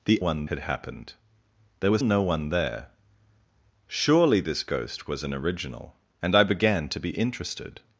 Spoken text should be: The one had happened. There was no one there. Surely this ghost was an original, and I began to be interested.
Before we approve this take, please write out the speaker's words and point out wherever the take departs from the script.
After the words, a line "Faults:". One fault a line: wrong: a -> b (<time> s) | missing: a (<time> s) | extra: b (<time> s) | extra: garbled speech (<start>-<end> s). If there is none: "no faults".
The one had happened. There was no one there. Surely this ghost was an original, and I began to be interested.
Faults:
no faults